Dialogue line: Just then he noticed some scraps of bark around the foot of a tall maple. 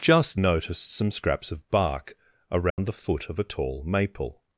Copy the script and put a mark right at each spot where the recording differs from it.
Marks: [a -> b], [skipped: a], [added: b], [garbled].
Just [skipped: then he] noticed some scraps of bark around the foot of a tall maple.